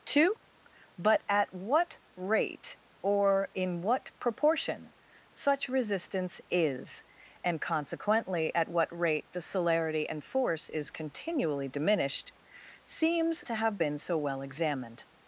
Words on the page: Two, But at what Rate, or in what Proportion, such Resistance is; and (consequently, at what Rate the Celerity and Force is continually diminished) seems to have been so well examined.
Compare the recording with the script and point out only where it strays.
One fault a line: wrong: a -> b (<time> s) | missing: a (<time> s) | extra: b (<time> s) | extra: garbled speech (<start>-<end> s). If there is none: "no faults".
no faults